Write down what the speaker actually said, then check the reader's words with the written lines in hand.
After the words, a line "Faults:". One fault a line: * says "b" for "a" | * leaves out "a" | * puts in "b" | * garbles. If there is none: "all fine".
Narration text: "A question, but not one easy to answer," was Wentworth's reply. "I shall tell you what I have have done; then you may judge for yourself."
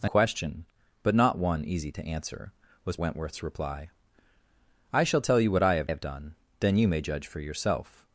"A question, but not one easy to answer," was Wentworth's reply. "I shall tell you what I have have done; then you may judge for yourself."
Faults:
all fine